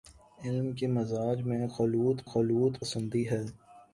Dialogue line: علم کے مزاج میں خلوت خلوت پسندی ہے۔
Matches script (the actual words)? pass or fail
pass